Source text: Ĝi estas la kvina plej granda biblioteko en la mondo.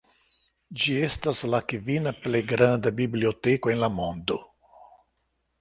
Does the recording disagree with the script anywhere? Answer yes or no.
no